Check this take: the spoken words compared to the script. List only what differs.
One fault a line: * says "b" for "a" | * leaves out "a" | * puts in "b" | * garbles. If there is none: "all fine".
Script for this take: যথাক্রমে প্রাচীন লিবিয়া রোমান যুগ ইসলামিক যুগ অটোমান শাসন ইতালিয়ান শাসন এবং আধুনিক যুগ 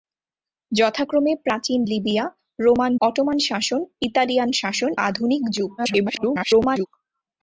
* leaves out "যুগ ইসলামিক যুগ"
* leaves out "এবং"
* garbles